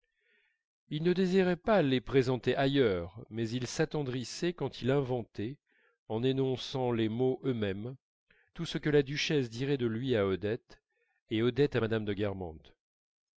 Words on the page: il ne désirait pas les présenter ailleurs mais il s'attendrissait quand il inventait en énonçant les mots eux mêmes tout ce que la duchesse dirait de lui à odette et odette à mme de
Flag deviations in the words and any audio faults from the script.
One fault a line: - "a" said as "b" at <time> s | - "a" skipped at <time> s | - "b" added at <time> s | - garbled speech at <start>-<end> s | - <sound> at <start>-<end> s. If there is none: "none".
none